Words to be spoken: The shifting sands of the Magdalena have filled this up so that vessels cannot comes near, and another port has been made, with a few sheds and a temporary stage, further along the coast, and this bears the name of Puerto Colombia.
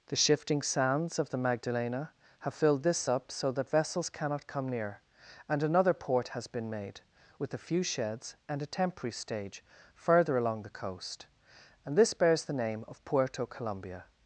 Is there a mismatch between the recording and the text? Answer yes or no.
yes